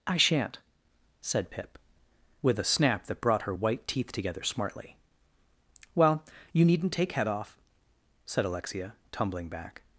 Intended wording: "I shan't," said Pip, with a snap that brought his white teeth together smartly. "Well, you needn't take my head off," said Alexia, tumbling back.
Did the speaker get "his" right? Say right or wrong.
wrong